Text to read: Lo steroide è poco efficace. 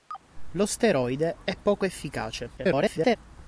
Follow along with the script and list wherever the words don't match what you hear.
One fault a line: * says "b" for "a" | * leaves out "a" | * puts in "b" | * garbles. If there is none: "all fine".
* garbles